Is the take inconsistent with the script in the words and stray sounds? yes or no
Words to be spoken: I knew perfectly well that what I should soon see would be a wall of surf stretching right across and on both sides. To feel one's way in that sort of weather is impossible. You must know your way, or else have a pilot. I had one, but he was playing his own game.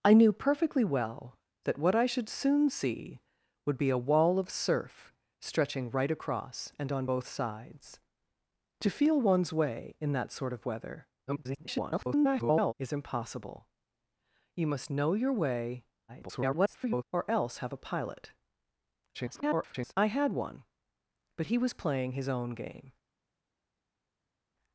yes